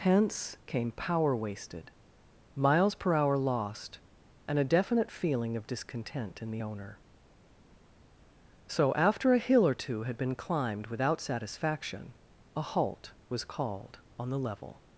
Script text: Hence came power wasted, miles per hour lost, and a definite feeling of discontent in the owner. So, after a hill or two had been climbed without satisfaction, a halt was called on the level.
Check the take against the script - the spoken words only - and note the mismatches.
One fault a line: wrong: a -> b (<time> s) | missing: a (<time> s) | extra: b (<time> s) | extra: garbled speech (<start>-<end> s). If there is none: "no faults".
no faults